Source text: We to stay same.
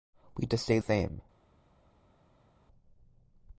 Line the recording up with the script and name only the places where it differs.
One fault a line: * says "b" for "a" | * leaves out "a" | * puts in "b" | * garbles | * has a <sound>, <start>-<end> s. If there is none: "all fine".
all fine